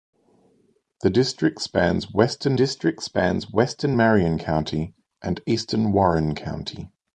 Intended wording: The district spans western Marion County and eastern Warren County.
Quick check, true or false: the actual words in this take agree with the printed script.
false